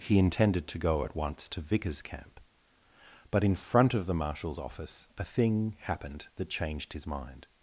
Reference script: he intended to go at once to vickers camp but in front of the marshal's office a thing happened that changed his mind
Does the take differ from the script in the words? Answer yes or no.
no